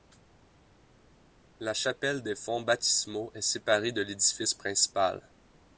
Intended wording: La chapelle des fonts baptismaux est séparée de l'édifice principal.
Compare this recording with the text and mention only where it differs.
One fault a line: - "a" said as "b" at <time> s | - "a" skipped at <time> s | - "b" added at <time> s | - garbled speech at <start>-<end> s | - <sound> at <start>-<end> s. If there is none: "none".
none